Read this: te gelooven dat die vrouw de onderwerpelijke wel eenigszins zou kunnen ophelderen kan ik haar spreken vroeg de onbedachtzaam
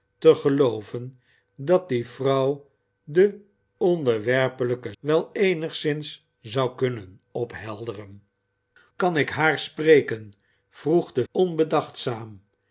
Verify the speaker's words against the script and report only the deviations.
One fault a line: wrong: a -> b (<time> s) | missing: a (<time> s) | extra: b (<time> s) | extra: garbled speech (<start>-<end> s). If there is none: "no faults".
no faults